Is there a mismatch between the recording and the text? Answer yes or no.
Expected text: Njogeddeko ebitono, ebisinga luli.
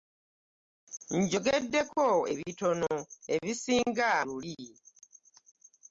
no